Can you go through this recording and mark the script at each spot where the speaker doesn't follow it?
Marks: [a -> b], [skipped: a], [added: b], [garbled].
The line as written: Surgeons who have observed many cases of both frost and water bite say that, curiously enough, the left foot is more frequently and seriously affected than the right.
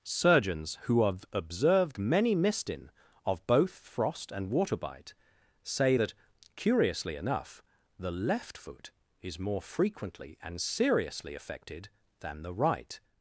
Surgeons who have observed many [cases -> mistin] of both frost and water bite say that, curiously enough, the left foot is more frequently and seriously affected than the right.